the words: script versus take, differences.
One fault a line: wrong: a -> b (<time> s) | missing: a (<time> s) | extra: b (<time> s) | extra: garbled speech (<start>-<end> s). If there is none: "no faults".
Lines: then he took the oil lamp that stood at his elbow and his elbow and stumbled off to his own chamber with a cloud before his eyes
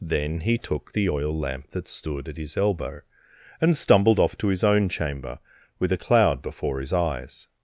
missing: his elbow and (3.7 s)